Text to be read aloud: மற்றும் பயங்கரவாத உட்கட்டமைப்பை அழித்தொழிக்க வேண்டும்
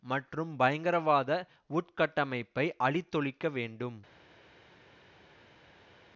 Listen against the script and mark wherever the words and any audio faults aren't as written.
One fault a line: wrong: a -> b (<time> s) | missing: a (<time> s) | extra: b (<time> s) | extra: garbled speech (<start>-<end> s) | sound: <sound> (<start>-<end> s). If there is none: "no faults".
no faults